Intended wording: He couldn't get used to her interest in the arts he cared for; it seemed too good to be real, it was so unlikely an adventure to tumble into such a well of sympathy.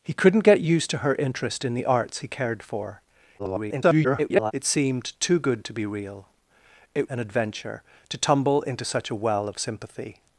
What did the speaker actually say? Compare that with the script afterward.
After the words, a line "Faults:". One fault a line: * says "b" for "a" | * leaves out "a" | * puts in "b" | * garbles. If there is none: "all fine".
He couldn't get used to her interest in the arts he cared for; [garbled] it seemed too good to be real, it an adventure to tumble into such a well of sympathy.
Faults:
* garbles
* leaves out "was so unlikely"